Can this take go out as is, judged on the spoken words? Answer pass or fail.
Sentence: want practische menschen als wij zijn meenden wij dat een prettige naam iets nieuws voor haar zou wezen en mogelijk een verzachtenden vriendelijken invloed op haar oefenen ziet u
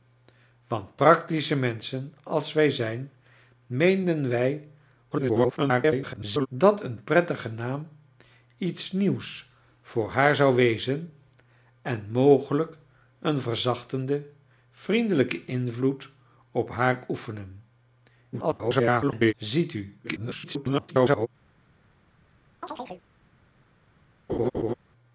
fail